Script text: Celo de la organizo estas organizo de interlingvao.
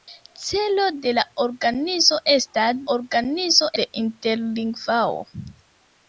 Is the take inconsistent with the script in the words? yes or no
no